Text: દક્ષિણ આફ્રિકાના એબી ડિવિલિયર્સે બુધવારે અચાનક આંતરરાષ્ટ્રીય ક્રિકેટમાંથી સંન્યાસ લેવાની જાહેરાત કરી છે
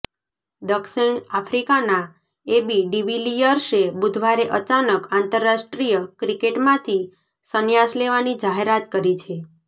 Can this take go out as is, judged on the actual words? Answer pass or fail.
pass